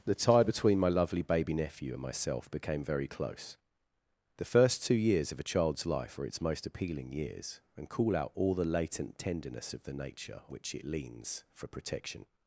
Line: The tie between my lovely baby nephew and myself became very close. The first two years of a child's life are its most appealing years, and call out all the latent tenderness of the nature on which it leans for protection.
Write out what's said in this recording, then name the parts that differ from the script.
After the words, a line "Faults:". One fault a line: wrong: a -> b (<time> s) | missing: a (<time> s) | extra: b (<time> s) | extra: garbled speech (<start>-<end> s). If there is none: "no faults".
The tie between my lovely baby nephew and myself became very close. The first two years of a child's life are its most appealing years, and call out all the latent tenderness of the nature which it leans for protection.
Faults:
missing: on (10.4 s)